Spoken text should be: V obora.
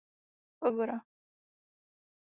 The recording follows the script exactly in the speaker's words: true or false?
true